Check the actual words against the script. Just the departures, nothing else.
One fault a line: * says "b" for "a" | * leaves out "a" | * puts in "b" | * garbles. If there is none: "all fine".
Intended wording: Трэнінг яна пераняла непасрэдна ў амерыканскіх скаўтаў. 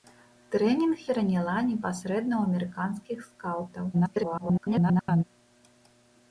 * leaves out "яна"
* garbles